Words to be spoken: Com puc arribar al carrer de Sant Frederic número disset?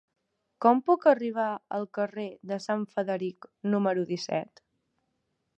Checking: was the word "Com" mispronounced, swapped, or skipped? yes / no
no